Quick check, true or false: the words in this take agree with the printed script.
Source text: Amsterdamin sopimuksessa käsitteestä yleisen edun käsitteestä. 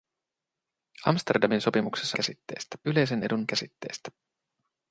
true